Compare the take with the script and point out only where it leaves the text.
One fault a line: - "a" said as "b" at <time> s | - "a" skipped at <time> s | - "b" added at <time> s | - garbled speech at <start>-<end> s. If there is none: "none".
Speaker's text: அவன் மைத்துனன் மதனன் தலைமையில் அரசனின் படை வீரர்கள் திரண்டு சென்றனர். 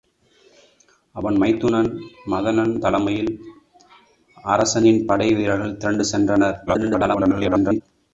- garbled speech at 6.7-7.8 s